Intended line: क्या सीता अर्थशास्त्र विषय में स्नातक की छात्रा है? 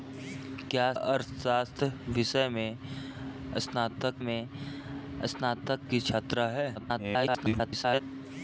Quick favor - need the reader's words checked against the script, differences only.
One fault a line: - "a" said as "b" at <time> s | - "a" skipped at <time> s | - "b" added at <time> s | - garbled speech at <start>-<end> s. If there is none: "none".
- "सीता" skipped at 0.9 s
- "में स्नातक" added at 4.2 s
- garbled speech at 6.7-8.0 s